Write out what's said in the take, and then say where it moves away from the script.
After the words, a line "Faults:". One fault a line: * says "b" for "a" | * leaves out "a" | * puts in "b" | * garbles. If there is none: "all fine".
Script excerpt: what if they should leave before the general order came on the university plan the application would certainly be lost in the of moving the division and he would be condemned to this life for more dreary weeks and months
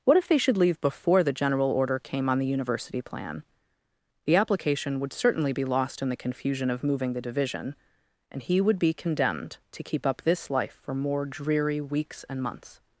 what if they should leave before the general order came on the university plan the application would certainly be lost in the confusion of moving the division and he would be condemned to keep up this life for more dreary weeks and months
Faults:
* puts in "confusion"
* puts in "keep up"